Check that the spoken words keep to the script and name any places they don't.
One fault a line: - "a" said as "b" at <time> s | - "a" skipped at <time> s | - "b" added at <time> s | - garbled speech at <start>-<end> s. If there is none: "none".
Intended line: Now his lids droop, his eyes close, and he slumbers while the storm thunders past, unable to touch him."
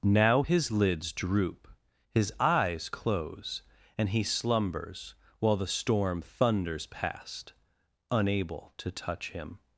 none